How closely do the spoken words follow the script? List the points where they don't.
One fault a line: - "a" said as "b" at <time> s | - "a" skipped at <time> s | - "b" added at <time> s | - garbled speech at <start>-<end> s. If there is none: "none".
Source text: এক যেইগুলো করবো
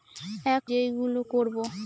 none